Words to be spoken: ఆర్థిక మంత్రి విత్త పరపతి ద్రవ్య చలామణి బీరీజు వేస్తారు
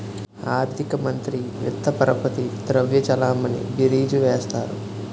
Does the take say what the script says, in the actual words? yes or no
yes